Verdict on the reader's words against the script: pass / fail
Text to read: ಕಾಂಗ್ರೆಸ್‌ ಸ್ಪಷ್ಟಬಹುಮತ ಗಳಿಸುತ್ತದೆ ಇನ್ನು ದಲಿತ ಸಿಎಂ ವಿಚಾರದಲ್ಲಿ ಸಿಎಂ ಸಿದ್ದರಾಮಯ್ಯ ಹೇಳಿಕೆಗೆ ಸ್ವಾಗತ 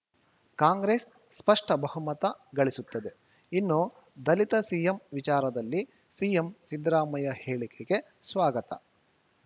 pass